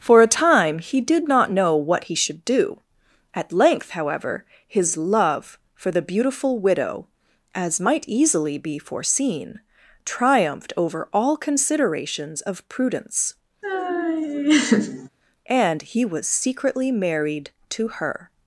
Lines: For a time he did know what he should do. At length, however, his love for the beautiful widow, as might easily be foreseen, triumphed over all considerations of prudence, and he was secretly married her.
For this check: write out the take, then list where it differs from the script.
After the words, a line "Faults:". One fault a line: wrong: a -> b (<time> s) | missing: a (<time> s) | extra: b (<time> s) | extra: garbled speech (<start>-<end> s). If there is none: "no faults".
For a time he did not know what he should do. At length, however, his love for the beautiful widow, as might easily be foreseen, triumphed over all considerations of prudence, and he was secretly married to her.
Faults:
extra: not (1.3 s)
extra: to (17.7 s)